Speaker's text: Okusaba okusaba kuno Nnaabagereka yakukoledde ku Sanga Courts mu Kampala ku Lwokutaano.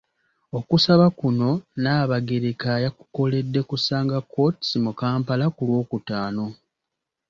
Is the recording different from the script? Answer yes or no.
yes